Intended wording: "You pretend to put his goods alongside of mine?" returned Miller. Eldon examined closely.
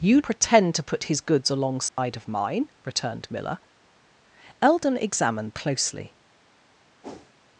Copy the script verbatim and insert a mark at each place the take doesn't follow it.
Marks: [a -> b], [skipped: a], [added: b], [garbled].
"You pretend to put his goods alongside of mine?" returned Miller. Eldon examined closely.